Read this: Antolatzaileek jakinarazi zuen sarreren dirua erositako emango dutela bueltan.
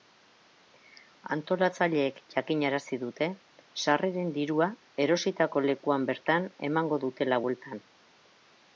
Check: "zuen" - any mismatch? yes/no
yes